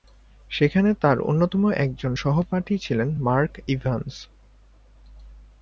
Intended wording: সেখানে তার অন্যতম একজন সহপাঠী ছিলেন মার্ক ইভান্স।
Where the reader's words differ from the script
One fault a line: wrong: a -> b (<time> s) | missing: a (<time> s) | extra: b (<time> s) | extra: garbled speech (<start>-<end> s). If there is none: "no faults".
no faults